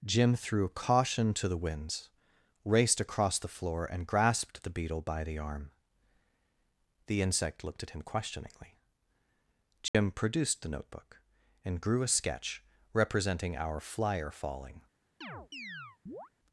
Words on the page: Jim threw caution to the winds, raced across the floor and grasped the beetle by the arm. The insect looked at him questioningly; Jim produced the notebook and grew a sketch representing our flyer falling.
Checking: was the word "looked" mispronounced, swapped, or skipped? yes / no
no